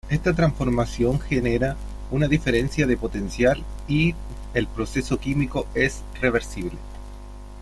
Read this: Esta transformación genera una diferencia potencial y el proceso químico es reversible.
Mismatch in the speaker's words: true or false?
true